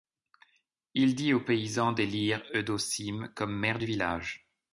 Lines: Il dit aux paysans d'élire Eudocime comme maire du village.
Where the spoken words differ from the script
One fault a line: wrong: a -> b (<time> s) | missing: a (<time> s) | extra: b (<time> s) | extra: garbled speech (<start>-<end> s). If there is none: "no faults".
no faults